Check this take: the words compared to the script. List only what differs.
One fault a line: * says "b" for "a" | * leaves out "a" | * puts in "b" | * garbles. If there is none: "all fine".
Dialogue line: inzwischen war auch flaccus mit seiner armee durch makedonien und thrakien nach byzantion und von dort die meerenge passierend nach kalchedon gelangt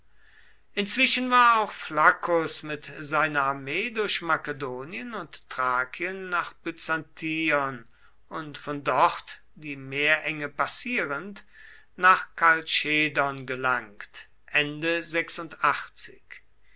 all fine